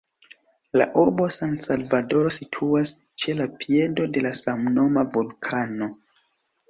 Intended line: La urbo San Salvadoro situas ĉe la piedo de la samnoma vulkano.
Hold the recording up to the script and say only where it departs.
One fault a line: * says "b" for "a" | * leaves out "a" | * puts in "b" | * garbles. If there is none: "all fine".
all fine